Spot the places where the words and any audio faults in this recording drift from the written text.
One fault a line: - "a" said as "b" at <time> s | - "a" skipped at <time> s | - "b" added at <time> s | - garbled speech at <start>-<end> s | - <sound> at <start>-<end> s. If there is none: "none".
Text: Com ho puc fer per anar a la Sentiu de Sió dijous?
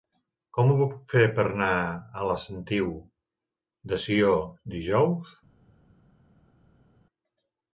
none